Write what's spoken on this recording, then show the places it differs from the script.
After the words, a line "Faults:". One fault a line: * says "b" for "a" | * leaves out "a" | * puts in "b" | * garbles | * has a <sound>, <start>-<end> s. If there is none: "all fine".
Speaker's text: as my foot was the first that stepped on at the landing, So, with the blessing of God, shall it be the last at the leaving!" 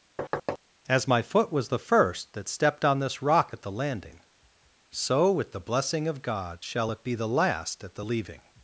as my foot was the first that stepped on this rock at the landing, So, with the blessing of God, shall it be the last at the leaving!"
Faults:
* has a thud, 0.2-0.6 s
* puts in "this rock"